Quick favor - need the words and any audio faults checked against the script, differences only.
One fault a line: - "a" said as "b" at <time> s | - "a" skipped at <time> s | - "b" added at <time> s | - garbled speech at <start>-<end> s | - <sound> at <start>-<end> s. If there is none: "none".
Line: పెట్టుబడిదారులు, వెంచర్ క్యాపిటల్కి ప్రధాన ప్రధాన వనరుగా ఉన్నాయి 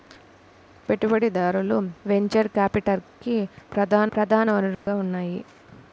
- dropout at 4.7-4.9 s